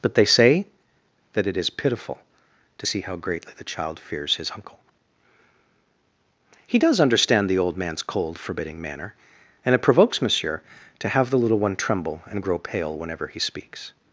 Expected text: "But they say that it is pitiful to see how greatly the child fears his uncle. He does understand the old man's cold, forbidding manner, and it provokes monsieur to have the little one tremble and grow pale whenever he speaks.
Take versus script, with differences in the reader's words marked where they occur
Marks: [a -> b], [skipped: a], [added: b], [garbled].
"But they say that it is pitiful to see how greatly the child fears his uncle. He does understand the old man's cold, forbidding manner, and it provokes monsieur to have the little one tremble and grow pale whenever he speaks.